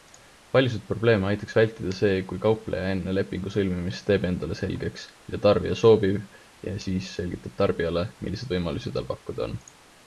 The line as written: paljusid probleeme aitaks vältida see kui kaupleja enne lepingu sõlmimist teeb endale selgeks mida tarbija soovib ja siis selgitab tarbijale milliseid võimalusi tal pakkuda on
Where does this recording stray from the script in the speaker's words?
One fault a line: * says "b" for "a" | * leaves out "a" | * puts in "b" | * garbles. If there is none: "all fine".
all fine